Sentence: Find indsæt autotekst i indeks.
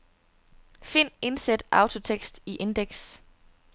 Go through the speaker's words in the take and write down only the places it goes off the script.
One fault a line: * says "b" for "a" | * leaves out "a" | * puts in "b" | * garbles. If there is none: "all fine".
all fine